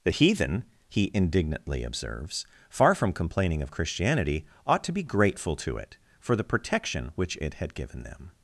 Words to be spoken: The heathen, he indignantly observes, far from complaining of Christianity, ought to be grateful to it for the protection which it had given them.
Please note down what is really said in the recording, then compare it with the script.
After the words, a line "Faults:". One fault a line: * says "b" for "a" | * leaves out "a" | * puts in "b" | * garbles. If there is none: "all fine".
The heathen, he indignantly observes, far from complaining of Christianity, ought to be grateful to it for the protection which it had given them.
Faults:
all fine